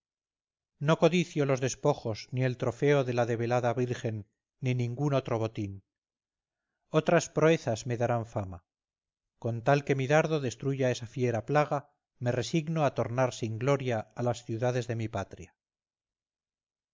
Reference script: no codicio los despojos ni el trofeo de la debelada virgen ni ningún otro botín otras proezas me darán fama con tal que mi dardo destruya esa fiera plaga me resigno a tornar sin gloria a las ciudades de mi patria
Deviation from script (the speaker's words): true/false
false